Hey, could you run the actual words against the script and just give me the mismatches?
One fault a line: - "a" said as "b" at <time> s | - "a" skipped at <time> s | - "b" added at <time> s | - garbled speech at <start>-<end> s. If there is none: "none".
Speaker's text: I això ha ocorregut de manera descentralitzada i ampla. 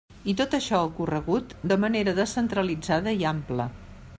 - "tot" added at 0.4 s